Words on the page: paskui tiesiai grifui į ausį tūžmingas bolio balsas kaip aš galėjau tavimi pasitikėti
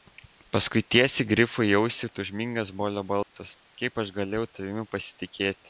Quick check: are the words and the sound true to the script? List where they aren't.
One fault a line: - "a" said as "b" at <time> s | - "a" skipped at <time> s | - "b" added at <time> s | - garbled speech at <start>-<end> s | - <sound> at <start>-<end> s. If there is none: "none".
- dropout at 3.2-3.4 s